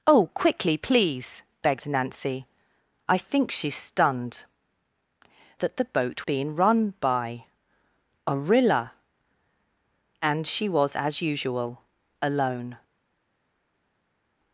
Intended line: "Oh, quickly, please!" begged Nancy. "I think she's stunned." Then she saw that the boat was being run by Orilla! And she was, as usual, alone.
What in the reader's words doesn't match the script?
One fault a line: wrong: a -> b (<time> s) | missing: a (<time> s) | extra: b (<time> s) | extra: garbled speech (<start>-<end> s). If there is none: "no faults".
missing: Then she saw (4.5 s)
missing: was (6.3 s)